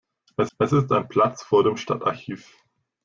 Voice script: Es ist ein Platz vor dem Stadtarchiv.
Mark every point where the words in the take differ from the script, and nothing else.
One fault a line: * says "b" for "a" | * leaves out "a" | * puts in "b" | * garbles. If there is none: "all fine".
* puts in "es"